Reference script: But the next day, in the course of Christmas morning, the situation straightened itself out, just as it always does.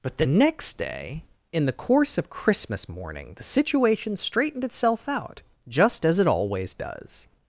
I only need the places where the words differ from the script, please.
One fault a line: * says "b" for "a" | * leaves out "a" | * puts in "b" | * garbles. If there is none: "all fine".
all fine